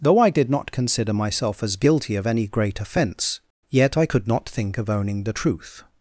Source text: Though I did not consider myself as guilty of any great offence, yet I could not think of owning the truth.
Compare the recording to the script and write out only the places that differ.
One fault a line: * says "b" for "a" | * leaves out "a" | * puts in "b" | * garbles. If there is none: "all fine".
all fine